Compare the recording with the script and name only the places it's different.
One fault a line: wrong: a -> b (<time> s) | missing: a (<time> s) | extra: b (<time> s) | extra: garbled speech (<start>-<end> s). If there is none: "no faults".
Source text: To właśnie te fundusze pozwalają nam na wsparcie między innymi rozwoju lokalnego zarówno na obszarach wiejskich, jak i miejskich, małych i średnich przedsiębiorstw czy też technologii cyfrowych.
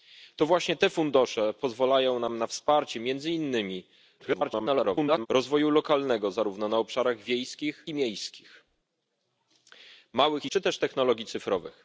extra: garbled speech (4.2-5.3 s)
missing: jak (7.9 s)
missing: średnich przedsiębiorstw (10.5 s)